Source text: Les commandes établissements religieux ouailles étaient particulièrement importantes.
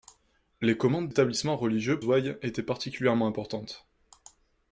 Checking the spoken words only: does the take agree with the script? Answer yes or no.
yes